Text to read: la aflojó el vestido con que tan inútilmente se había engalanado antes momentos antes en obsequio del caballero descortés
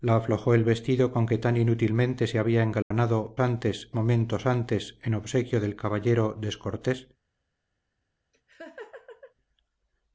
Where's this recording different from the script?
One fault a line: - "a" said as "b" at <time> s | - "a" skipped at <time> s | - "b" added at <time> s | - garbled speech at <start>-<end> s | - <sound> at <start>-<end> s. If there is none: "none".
- dropout at 2.8-2.9 s
- laugh at 8.3-9.3 s